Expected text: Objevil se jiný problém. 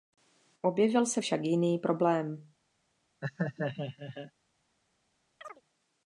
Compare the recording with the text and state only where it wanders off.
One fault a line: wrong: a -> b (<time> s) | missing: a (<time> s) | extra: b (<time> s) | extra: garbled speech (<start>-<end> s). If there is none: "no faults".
extra: však (1.2 s)